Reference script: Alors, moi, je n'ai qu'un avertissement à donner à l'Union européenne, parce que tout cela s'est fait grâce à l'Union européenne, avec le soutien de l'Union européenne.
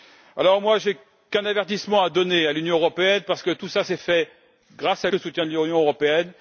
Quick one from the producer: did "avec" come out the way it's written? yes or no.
no